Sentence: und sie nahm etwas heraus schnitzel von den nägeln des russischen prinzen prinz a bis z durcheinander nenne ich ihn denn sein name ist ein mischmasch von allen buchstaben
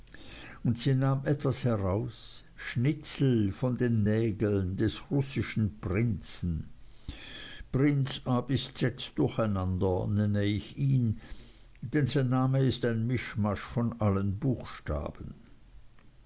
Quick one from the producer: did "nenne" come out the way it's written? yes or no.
yes